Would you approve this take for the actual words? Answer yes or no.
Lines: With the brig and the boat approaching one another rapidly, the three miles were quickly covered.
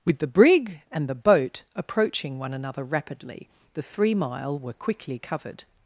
no